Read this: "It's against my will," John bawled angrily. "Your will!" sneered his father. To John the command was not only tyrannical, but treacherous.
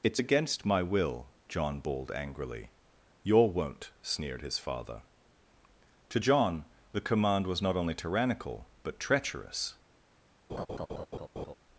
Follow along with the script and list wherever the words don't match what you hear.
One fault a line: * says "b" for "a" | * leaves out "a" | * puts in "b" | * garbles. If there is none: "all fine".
* says "won't" for "will"